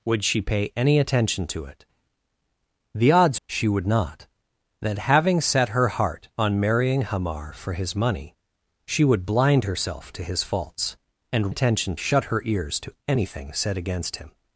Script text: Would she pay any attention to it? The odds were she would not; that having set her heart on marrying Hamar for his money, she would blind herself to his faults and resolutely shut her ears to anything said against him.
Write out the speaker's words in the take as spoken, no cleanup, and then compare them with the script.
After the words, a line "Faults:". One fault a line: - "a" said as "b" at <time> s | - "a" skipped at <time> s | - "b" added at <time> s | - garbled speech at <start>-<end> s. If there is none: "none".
Would she pay any attention to it? The odds she would not; that having set her heart on marrying Hamar for his money, she would blind herself to his faults and attention shut her ears to anything said against him.
Faults:
- "were" skipped at 3.4 s
- "resolutely" said as "attention" at 11.5 s